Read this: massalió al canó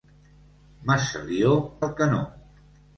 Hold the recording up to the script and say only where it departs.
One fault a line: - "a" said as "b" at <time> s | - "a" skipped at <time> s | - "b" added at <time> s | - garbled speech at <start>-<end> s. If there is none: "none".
none